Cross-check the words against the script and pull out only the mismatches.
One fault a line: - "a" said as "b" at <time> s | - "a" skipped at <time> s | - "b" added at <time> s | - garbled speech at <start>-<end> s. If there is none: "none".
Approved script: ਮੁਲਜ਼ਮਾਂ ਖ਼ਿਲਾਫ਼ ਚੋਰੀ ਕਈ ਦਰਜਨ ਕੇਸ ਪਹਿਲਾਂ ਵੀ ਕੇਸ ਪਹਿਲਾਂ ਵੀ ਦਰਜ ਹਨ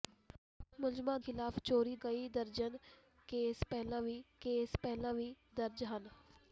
none